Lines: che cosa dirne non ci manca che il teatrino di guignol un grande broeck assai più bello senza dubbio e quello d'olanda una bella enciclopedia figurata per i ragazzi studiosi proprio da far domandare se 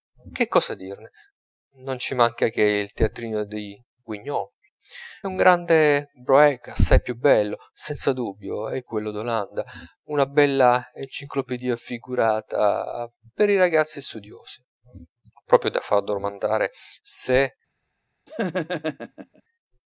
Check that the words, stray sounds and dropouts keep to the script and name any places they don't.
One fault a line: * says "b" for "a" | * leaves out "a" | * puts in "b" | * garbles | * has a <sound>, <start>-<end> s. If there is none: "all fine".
* has a laugh, 18.3-19.4 s